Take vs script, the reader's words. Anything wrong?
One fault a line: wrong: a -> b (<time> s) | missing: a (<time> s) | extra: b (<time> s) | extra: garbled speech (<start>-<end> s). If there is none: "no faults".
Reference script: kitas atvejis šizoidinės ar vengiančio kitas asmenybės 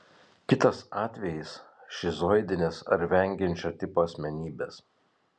wrong: kitas -> tipo (3.8 s)